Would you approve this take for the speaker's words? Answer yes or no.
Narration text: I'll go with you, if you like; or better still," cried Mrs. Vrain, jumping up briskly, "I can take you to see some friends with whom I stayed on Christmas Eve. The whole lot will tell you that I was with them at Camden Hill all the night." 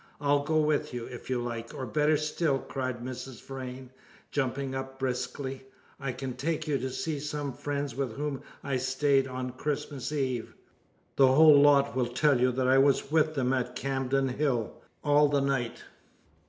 yes